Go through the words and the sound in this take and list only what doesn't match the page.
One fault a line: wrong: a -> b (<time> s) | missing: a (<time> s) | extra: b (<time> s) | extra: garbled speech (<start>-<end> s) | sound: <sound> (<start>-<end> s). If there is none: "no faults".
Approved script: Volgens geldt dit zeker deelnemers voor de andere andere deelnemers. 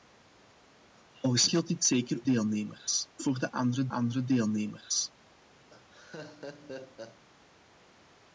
sound: laugh (5.7-7.2 s)